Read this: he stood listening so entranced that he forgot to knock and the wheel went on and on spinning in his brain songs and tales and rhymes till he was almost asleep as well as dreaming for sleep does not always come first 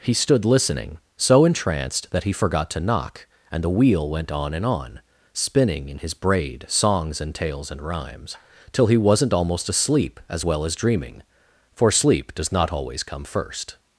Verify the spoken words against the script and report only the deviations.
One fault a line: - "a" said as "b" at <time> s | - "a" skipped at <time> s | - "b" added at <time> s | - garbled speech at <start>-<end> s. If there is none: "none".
- "brain" said as "braid" at 6.2 s
- "was" said as "wasn't" at 9.0 s